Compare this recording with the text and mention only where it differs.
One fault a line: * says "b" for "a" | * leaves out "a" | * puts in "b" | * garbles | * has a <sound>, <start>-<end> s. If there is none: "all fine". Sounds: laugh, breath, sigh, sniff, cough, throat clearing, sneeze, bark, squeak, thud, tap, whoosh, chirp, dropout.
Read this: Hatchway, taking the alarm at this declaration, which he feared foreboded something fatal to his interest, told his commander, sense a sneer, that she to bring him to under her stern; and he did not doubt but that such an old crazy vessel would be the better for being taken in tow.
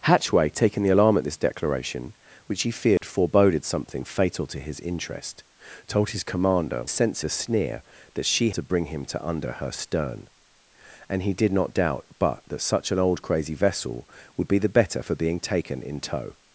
* has a dropout, 3.0-3.0 s